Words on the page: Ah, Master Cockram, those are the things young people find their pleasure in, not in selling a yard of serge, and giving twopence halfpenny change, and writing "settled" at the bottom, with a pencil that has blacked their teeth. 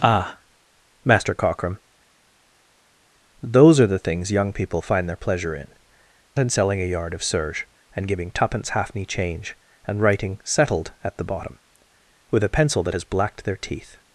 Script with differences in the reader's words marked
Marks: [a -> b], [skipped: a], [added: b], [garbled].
Ah, Master Cockram, those are the things young people find their pleasure in, [skipped: not] in selling a yard of serge, and giving twopence halfpenny change, and writing "settled" at the bottom, with a pencil that has blacked their teeth.